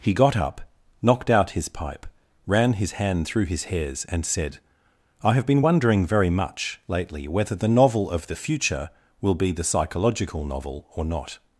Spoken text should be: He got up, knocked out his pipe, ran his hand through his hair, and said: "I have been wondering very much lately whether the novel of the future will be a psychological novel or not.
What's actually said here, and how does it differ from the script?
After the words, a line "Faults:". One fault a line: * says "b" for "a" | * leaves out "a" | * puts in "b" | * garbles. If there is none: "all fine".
He got up, knocked out his pipe, ran his hand through his hairs, and said: "I have been wondering very much lately whether the novel of the future will be the psychological novel or not.
Faults:
* says "hairs" for "hair"
* says "the" for "a"